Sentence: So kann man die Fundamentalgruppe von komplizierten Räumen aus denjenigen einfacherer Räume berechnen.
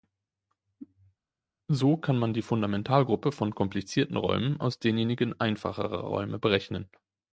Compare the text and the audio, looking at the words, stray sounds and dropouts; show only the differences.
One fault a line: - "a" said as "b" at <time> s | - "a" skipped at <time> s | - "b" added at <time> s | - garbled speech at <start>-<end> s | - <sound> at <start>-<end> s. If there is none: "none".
none